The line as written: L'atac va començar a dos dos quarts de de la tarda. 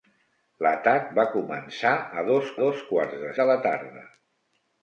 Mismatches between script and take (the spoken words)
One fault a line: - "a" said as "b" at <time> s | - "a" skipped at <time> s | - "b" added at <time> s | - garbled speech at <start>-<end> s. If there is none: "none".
none